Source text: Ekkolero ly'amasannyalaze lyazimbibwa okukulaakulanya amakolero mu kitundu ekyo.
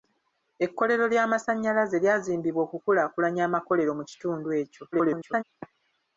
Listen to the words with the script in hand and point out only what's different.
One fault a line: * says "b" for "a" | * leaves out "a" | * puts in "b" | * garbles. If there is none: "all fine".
* garbles